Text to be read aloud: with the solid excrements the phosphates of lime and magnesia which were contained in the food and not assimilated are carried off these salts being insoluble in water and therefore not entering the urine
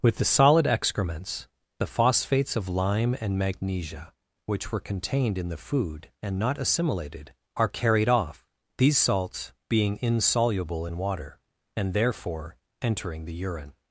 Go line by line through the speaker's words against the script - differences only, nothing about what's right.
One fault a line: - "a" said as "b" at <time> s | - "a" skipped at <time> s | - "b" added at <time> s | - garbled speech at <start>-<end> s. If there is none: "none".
- "not" skipped at 12.6 s